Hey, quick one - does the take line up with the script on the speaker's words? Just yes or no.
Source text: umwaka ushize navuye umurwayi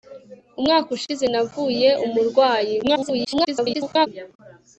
no